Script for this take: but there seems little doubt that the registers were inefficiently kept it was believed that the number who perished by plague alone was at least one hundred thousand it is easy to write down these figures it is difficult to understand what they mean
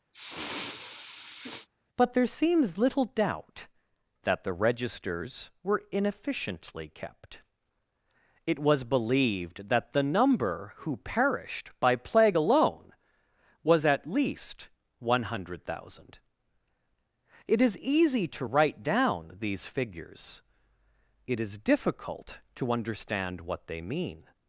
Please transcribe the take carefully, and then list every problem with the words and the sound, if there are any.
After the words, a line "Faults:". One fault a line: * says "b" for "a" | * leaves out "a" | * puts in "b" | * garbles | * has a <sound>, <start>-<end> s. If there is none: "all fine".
but there seems little doubt that the registers were inefficiently kept it was believed that the number who perished by plague alone was at least one hundred thousand it is easy to write down these figures it is difficult to understand what they mean
Faults:
* has a sniff, 0.1-1.7 s